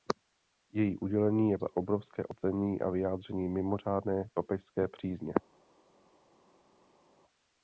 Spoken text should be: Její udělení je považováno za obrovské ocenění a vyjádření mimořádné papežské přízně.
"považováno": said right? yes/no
no